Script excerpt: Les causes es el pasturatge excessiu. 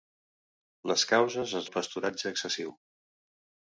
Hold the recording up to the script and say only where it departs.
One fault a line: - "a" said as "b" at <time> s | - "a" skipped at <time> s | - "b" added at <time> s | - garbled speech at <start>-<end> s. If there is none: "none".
none